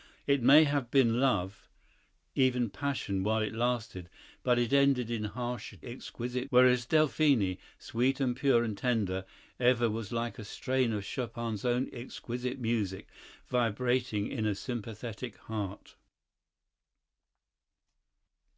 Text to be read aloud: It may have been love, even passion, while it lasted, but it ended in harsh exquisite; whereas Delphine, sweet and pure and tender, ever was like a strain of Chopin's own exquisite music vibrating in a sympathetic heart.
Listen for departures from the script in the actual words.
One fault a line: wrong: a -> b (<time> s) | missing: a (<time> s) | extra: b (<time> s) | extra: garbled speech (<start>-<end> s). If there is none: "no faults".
no faults